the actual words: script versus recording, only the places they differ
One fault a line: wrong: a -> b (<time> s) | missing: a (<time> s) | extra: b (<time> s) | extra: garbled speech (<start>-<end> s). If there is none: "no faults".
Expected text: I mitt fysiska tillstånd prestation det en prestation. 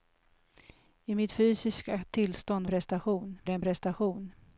no faults